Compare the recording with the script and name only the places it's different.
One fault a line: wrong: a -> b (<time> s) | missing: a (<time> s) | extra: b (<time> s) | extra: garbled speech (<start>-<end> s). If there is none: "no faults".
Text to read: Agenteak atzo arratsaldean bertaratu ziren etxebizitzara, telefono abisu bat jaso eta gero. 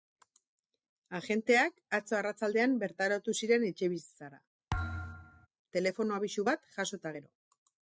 no faults